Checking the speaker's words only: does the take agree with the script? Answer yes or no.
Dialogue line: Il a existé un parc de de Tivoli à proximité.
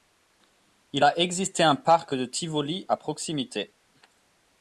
no